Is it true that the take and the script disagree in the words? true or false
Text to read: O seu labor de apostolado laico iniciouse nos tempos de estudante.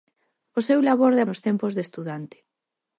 true